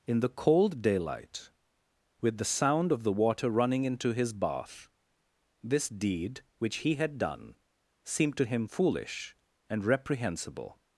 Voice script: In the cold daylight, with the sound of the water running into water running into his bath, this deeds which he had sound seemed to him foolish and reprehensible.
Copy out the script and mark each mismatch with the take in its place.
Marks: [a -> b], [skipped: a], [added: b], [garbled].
In the cold daylight, with the sound of the water running into [skipped: water running into] his bath, this [deeds -> deed] which he had [sound -> done] seemed to him foolish and reprehensible.